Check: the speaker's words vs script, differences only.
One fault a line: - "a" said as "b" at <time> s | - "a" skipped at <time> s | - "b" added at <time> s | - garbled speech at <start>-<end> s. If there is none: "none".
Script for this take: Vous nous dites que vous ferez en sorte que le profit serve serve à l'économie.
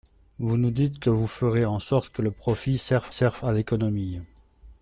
none